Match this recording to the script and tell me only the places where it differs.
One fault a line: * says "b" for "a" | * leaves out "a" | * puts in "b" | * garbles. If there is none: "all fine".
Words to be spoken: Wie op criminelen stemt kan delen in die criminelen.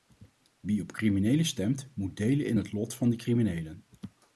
* says "moet" for "kan"
* puts in "het lot van"